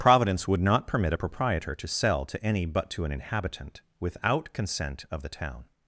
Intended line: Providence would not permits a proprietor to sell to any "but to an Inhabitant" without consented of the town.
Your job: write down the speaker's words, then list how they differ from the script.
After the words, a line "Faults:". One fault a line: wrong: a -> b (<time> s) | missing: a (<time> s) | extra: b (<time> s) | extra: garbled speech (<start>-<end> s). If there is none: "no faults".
Providence would not permit a proprietor to sell to any "but to an Inhabitant" without consent of the town.
Faults:
wrong: permits -> permit (0.9 s)
wrong: consented -> consent (4.5 s)